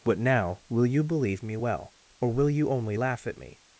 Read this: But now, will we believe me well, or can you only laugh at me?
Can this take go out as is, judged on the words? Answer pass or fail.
fail